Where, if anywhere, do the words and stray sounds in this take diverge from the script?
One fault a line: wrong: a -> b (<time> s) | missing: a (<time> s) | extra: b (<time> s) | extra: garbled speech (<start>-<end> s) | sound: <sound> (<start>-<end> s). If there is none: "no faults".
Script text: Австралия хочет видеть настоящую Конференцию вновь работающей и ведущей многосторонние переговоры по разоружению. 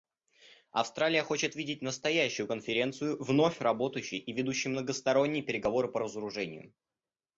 no faults